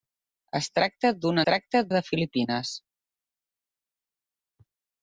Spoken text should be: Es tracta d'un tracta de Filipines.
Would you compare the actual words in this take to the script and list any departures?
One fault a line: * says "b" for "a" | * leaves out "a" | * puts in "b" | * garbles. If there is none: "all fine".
all fine